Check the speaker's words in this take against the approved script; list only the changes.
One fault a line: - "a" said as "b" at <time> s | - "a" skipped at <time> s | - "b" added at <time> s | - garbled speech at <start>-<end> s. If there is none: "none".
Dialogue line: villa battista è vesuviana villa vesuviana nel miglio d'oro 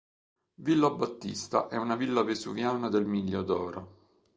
- "vesuviana" said as "una" at 1.8 s
- "nel" said as "del" at 2.9 s